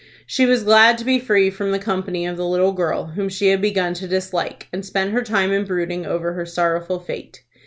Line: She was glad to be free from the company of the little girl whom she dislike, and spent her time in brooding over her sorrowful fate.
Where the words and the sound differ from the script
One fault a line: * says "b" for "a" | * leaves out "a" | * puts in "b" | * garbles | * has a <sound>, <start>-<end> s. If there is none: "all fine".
* puts in "had begun to"